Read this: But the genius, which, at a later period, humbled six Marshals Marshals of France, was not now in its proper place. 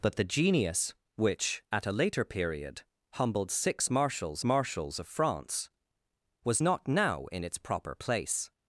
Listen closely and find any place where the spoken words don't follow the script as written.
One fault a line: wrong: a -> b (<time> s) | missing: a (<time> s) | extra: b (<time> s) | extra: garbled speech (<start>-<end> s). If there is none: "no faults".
no faults